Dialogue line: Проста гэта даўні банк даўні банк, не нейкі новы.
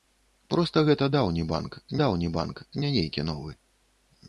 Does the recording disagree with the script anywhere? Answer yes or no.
no